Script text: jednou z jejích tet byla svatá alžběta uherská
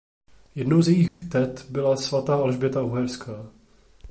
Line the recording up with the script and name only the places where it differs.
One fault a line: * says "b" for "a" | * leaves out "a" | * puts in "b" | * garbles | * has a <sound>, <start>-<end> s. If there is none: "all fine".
* has a dropout, 1.1-1.2 s